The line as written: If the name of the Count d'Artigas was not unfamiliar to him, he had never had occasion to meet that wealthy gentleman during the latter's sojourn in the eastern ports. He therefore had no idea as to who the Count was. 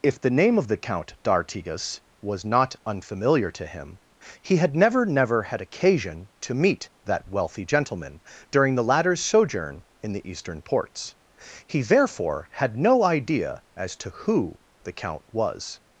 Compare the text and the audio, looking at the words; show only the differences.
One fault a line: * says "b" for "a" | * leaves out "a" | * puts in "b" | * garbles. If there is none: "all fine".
* puts in "never"